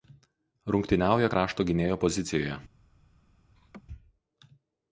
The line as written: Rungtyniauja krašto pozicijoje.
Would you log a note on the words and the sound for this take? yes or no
yes